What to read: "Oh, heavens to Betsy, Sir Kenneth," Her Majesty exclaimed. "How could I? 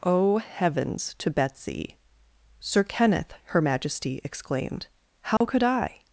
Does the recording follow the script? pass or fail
pass